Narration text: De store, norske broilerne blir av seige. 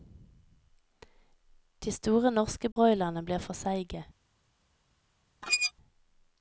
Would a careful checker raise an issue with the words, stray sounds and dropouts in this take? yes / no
yes